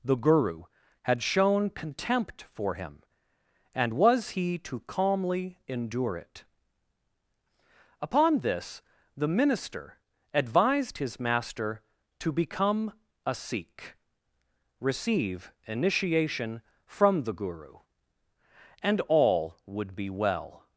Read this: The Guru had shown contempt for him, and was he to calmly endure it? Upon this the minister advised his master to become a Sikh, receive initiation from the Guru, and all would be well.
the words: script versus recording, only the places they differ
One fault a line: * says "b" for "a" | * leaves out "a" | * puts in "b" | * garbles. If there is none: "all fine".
all fine